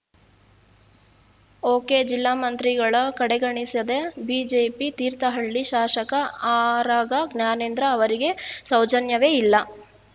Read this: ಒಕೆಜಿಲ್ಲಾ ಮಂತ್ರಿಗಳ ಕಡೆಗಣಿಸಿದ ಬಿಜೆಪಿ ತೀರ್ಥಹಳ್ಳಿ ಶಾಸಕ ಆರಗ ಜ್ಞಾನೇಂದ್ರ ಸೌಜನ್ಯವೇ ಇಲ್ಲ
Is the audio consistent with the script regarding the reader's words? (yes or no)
no